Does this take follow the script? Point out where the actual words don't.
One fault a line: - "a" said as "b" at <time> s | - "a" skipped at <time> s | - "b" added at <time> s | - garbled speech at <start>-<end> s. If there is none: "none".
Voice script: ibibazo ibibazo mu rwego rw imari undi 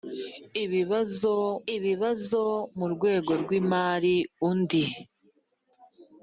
none